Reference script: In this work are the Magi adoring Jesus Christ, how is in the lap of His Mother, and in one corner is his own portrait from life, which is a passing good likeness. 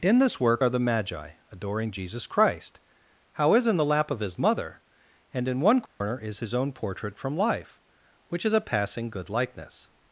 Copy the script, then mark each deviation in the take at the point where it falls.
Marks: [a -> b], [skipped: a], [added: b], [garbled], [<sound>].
In this work are the Magi adoring Jesus Christ, how is in the lap of His Mother, and in one corner [dropout] is his own portrait from life, which is a passing good likeness.